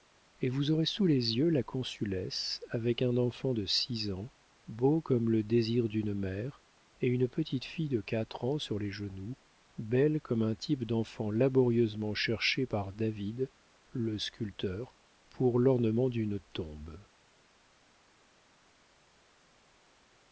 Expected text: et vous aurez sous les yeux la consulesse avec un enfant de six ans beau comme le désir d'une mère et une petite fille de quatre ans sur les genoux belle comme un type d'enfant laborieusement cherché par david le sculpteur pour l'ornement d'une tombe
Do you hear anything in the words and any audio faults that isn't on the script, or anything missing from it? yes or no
no